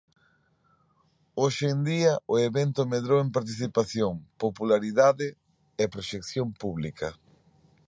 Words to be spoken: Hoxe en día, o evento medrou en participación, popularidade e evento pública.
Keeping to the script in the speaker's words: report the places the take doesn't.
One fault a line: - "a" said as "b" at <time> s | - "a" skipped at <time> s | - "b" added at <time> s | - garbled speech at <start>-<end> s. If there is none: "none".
- "evento" said as "proxección" at 5.9 s